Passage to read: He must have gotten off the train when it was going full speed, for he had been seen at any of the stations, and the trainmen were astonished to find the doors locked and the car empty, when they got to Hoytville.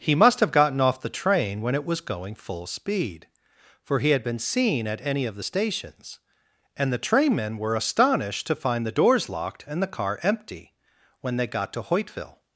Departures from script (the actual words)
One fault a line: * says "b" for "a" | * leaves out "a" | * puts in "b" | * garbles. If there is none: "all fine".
all fine